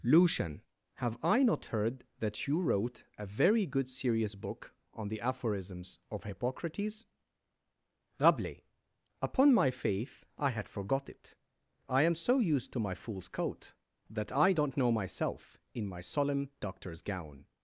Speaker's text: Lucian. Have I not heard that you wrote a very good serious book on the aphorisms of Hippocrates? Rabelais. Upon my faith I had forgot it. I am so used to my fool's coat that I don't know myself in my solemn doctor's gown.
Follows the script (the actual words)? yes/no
yes